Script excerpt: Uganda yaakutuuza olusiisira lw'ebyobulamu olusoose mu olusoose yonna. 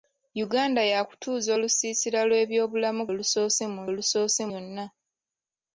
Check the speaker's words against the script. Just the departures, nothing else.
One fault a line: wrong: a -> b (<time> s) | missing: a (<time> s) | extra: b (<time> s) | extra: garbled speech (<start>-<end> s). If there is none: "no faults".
no faults